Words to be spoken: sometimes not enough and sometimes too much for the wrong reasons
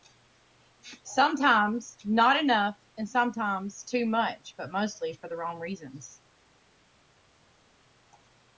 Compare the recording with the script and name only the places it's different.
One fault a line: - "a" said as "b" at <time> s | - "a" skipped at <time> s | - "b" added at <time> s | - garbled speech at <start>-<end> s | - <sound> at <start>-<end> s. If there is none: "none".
- "but mostly" added at 4.6 s